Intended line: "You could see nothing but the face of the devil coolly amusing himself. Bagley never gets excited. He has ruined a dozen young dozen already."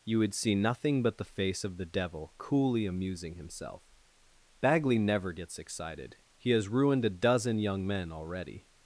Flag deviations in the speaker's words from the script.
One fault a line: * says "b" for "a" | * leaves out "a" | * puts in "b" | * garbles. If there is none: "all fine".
* says "would" for "could"
* says "men" for "dozen"